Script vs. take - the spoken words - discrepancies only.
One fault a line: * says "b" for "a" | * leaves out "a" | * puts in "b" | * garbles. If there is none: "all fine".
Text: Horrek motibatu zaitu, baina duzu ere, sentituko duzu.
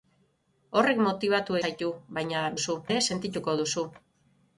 all fine